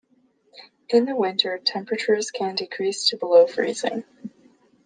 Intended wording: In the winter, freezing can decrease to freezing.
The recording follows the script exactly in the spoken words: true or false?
false